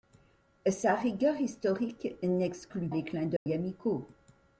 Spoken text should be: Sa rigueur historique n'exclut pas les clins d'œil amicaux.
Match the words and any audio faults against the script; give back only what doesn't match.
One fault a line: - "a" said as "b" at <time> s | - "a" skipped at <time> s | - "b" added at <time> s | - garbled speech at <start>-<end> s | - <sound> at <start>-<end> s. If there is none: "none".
- "pas" skipped at 2.9 s
- dropout at 3.4-3.5 s